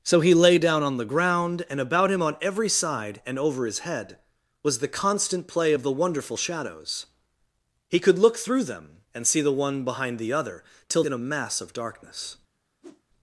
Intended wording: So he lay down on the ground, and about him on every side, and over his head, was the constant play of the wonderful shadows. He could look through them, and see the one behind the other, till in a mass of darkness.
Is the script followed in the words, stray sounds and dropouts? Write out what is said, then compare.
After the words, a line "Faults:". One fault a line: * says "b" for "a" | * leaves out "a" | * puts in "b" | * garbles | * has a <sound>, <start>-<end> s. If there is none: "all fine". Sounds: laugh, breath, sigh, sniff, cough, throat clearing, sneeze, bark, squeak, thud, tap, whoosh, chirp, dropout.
So he lay down on the ground, and about him on every side, and over his head, was the constant play of the wonderful shadows. He could look through them, and see the one behind the other, till in a mass of darkness.
Faults:
* has a whoosh, 12.8-13.0 s